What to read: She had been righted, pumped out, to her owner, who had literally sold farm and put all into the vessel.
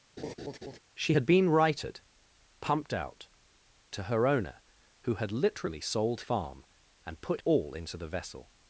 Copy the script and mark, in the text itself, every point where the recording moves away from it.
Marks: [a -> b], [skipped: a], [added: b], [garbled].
She had been righted, pumped out, to her owner, who had literally sold farm and put all into the vessel.